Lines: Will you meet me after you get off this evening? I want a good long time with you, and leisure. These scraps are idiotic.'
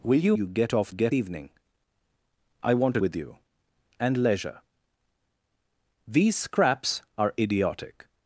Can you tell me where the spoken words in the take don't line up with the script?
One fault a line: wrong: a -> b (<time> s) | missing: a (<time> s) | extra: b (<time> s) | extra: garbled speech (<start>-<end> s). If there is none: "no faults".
missing: meet me after (0.3 s)
wrong: this -> get (0.9 s)
missing: good long time (3.0 s)